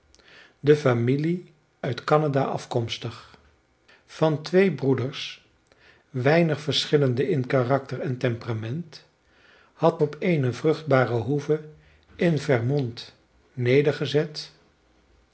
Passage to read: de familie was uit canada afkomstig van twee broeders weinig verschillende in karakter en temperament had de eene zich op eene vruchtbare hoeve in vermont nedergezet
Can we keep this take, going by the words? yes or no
no